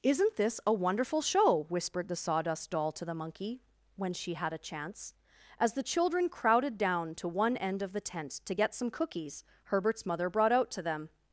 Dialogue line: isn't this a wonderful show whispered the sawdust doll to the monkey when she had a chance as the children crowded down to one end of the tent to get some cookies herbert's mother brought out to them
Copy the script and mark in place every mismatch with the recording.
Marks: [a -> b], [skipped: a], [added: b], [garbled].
isn't this a wonderful show whispered the sawdust doll to the monkey when she had a chance as the children crowded down to one end of the tent to get some cookies herbert's mother brought out to them